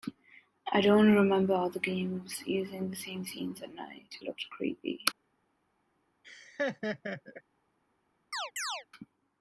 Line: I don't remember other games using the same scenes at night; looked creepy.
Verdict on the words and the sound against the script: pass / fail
fail